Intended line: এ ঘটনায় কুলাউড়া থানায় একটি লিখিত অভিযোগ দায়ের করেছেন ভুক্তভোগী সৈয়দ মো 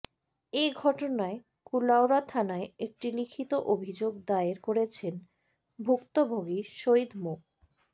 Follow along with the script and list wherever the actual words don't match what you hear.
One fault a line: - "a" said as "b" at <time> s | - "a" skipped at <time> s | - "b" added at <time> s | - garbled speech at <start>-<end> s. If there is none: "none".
none